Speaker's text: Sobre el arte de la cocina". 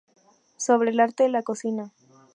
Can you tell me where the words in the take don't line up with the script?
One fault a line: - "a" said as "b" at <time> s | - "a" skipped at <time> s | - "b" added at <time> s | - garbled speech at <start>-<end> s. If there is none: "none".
none